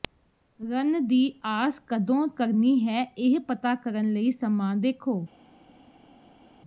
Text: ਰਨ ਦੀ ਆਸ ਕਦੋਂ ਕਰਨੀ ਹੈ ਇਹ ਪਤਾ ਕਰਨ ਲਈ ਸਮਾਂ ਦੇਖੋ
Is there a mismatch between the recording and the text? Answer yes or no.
no